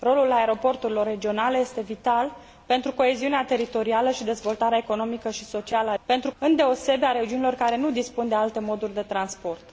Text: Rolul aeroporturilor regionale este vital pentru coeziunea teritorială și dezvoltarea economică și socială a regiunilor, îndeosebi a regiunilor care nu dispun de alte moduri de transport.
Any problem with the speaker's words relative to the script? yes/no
yes